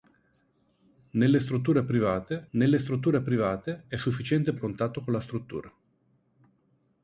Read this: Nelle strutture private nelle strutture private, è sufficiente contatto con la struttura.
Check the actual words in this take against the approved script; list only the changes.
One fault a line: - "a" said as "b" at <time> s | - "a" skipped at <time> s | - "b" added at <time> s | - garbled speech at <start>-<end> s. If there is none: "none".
none